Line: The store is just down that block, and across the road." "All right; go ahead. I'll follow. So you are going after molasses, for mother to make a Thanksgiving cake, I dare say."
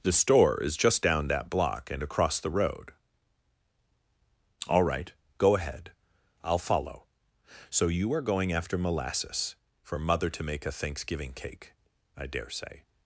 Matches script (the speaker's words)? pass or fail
pass